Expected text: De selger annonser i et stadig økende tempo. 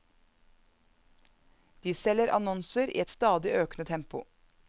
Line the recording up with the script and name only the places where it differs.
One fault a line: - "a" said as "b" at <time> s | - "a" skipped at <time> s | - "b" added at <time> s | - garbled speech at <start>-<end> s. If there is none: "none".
none